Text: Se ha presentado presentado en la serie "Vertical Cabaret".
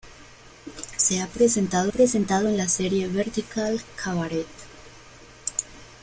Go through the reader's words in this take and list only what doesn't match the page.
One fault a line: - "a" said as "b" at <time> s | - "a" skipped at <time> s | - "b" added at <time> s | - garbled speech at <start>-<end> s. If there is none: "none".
none